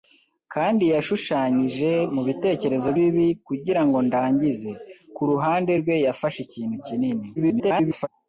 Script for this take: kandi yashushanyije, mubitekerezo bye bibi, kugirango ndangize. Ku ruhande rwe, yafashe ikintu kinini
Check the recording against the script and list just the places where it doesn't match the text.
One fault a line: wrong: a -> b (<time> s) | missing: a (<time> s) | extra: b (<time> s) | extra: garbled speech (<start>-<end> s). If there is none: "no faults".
missing: bye (2.9 s)
extra: garbled speech (7.4-8.1 s)